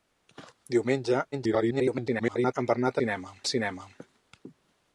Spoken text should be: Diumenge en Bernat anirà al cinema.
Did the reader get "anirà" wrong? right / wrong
wrong